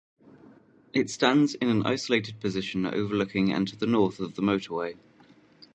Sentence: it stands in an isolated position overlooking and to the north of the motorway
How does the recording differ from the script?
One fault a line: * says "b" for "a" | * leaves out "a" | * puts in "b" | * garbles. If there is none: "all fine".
all fine